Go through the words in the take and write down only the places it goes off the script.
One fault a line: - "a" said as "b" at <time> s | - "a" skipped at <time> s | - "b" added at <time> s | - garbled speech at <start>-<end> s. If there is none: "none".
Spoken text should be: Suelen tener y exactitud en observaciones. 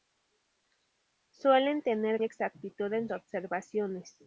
none